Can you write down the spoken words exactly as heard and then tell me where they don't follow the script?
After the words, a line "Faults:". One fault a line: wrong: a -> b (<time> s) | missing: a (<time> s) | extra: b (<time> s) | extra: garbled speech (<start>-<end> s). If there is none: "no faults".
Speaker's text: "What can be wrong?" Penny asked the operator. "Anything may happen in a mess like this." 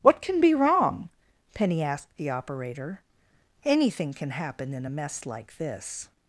"What can be wrong?" Penny asked the operator. "Anything can happen in a mess like this."
Faults:
wrong: may -> can (4.1 s)